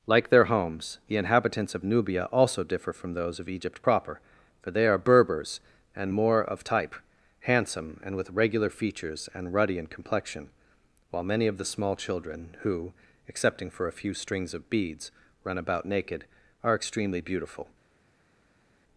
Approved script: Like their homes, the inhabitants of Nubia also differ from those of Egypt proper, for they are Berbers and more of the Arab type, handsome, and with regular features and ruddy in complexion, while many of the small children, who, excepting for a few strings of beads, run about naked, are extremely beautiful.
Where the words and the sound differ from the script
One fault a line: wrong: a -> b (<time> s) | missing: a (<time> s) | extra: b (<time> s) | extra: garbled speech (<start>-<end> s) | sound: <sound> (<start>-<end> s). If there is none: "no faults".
missing: the Arab (6.6 s)